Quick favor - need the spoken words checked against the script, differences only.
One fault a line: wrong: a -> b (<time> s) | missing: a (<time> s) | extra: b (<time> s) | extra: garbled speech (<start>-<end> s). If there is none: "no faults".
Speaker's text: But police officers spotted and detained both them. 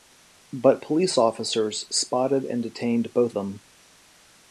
no faults